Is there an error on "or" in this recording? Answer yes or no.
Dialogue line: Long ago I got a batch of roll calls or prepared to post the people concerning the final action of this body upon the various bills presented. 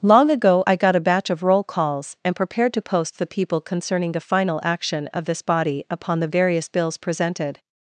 yes